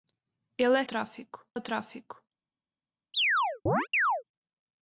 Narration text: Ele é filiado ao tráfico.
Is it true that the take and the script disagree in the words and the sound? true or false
true